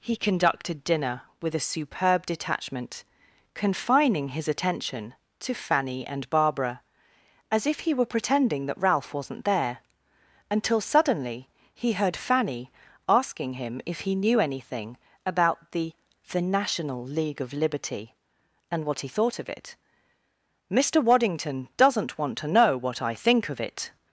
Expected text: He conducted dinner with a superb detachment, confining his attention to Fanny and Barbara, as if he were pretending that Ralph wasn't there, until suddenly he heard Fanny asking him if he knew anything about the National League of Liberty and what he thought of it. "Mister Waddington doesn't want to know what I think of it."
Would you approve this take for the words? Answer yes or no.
no